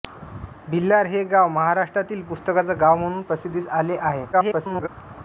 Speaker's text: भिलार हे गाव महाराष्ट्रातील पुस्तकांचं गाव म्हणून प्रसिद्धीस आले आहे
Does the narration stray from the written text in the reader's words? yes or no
yes